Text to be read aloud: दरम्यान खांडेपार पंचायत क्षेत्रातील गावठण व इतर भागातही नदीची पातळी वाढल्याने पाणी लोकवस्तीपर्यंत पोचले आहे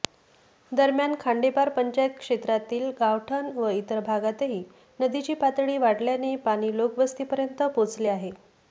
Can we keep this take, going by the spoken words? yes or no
yes